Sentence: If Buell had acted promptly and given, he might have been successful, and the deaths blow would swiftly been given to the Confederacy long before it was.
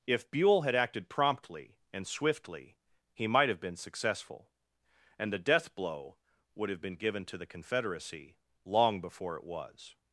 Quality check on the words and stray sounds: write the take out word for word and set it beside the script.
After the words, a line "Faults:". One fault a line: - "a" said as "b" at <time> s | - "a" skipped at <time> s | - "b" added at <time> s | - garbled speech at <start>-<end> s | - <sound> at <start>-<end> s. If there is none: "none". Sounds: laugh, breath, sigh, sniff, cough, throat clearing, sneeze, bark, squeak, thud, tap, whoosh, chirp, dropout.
If Buell had acted promptly and swiftly, he might have been successful, and the death blow would have been given to the Confederacy long before it was.
Faults:
- "given" said as "swiftly" at 2.1 s
- "deaths" said as "death" at 5.4 s
- "swiftly" said as "have" at 6.7 s